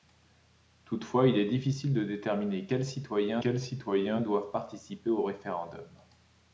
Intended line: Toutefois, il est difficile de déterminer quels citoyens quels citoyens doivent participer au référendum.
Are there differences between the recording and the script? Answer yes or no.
no